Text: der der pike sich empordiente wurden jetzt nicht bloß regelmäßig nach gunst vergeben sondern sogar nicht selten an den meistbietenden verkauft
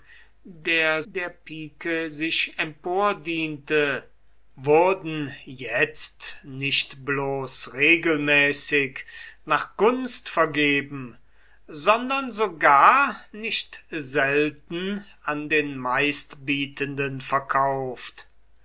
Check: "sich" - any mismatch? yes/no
no